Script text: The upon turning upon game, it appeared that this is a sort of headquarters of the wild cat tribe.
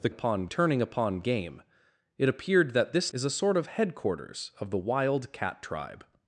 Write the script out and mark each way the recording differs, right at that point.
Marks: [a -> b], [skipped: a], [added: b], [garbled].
The upon turning upon game, it appeared that this is a sort of headquarters of the wild cat tribe.